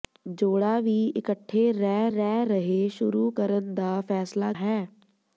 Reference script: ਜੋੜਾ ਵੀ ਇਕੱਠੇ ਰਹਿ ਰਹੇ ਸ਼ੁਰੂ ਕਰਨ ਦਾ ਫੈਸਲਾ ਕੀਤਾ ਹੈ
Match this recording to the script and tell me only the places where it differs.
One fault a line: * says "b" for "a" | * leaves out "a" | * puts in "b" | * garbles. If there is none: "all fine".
* puts in "ਰਹਿ"
* leaves out "ਕੀਤਾ"